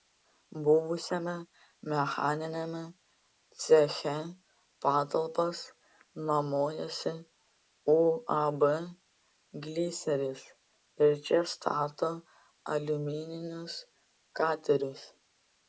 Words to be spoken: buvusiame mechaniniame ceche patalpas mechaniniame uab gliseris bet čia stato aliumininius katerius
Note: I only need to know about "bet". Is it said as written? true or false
false